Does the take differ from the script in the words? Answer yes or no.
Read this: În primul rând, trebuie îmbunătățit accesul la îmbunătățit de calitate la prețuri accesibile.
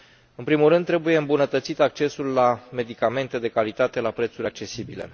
yes